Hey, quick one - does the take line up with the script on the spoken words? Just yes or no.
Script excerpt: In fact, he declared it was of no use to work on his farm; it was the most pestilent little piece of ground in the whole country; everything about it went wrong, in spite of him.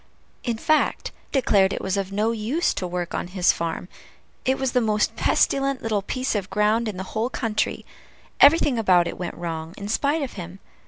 no